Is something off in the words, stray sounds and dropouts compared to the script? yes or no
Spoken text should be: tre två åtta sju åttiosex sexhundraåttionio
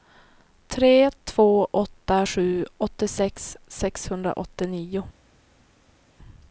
no